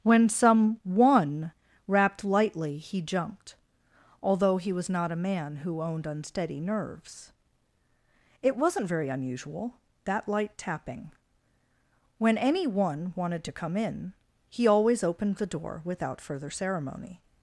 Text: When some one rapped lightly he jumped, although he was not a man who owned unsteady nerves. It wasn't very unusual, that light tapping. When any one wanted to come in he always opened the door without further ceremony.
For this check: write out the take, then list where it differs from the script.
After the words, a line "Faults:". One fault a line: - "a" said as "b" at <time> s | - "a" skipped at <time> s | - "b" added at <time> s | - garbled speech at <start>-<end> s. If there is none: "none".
When some one rapped lightly he jumped, although he was not a man who owned unsteady nerves. It wasn't very unusual, that light tapping. When any one wanted to come in he always opened the door without further ceremony.
Faults:
none